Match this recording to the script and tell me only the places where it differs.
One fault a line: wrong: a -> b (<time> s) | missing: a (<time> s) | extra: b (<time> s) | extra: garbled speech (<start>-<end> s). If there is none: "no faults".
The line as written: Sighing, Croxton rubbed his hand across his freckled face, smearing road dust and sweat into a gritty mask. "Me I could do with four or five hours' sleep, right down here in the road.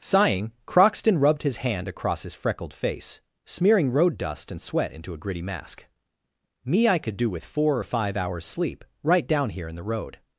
no faults